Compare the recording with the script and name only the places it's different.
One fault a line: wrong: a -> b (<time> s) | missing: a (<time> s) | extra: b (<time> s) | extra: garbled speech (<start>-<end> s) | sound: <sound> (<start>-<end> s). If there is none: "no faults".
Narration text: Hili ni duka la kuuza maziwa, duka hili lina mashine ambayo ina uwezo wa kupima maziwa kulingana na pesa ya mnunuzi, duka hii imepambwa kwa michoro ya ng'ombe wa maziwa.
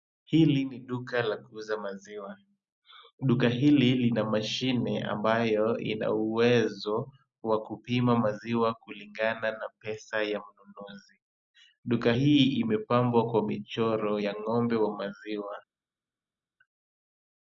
no faults